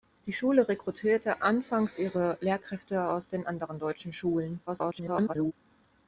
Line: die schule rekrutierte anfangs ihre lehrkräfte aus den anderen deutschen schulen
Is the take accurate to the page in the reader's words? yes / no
no